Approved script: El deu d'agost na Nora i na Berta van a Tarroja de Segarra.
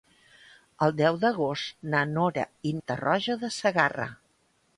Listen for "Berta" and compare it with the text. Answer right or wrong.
wrong